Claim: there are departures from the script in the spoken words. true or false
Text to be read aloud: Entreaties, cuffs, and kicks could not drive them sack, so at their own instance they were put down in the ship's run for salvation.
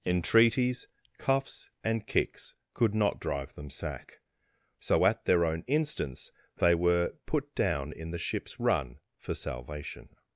false